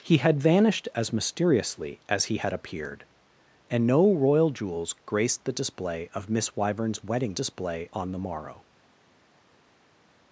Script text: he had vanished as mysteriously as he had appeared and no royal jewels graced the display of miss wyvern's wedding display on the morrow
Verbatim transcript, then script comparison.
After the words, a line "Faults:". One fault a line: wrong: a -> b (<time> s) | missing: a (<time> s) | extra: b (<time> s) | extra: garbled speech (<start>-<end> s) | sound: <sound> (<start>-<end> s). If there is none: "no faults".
he had vanished as mysteriously as he had appeared and no royal jewels graced the display of miss wyvern's wedding display on the morrow
Faults:
no faults